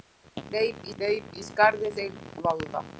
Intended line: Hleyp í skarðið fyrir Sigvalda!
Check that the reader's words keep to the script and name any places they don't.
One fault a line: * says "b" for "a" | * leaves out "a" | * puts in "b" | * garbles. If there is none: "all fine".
* puts in "hleyp"
* leaves out "fyrir"